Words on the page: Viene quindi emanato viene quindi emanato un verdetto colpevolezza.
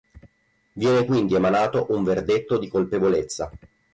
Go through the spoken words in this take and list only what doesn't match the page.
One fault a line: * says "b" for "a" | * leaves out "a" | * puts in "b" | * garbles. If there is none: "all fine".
* leaves out "viene quindi emanato"
* puts in "di"